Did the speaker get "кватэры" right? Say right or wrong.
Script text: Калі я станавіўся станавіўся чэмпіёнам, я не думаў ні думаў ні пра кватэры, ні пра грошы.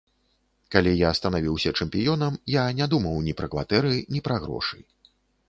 right